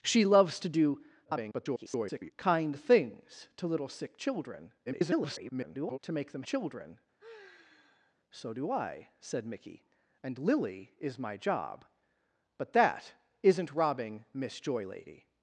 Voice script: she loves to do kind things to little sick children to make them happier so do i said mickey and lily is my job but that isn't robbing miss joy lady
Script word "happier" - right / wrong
wrong